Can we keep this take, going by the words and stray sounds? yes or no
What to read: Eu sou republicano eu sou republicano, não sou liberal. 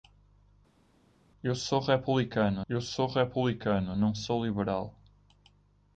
yes